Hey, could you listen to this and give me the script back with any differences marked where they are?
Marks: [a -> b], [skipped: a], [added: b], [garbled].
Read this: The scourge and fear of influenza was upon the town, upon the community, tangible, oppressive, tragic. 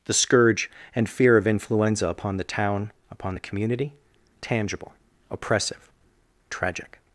The scourge and fear of influenza [skipped: was] upon the town, upon the community, tangible, oppressive, tragic.